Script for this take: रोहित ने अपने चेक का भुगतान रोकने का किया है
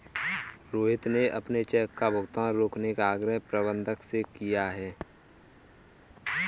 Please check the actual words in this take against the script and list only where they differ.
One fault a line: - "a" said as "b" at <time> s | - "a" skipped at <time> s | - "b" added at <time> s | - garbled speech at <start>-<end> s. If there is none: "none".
- "आग्रह प्रबंधक से" added at 3.1 s